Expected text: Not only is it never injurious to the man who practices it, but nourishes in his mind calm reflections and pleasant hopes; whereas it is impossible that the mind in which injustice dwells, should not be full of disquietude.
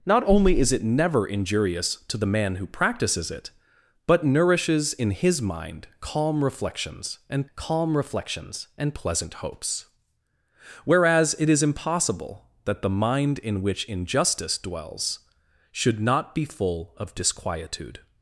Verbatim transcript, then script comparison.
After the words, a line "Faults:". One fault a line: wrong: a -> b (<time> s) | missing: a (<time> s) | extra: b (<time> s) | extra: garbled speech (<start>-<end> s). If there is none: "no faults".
Not only is it never injurious to the man who practices it, but nourishes in his mind calm reflections and calm reflections and pleasant hopes; whereas it is impossible that the mind in which injustice dwells, should not be full of disquietude.
Faults:
extra: calm reflections and (7.5 s)